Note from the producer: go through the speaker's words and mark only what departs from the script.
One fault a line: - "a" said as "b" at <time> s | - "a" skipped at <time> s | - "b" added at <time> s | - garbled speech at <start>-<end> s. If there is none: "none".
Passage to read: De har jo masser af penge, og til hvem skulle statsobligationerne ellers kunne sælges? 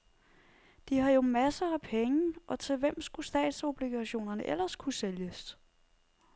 none